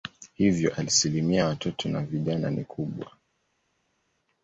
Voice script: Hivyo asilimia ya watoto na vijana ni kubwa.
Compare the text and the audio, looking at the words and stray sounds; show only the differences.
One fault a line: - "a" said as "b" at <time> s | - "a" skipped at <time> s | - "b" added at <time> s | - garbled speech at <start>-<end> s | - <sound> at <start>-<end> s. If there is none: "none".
none